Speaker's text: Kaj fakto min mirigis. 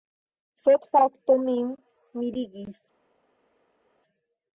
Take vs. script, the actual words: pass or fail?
fail